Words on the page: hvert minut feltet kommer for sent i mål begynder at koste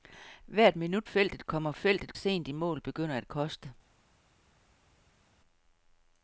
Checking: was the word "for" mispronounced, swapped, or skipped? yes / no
yes